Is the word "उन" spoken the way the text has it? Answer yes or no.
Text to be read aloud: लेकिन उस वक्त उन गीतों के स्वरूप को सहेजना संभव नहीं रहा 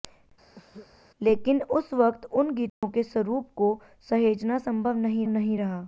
yes